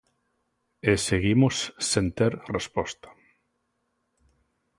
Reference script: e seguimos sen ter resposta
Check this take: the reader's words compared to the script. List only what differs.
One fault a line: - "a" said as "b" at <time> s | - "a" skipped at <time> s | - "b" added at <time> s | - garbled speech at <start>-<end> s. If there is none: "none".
none